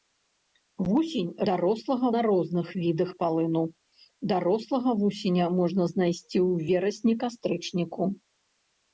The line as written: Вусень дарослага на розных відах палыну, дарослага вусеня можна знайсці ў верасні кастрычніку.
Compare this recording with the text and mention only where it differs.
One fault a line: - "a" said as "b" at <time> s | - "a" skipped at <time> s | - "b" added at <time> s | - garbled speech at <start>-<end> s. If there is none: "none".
none